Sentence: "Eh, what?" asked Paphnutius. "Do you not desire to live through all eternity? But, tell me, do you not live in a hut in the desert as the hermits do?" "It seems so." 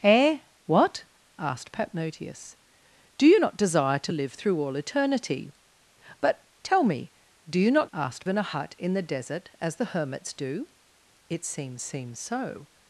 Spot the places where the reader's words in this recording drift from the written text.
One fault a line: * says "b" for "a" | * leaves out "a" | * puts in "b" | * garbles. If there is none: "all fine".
* says "asked" for "live"
* puts in "seems"